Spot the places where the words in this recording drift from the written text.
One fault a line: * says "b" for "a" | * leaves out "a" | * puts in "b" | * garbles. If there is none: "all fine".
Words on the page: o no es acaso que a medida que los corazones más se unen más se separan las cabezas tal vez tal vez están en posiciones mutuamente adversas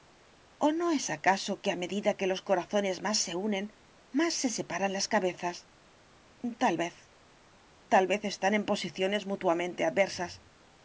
all fine